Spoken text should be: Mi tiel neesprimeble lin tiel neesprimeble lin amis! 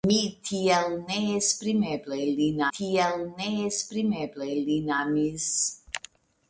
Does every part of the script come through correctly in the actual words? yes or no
yes